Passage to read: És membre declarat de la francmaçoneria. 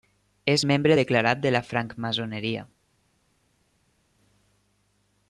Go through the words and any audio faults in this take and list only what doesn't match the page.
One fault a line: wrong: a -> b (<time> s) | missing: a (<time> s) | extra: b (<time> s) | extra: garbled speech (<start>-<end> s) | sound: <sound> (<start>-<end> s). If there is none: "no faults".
no faults